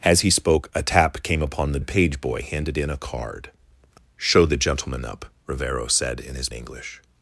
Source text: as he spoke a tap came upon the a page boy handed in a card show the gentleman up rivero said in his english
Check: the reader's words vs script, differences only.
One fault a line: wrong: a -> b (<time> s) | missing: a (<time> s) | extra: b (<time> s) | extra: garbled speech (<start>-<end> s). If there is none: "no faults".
no faults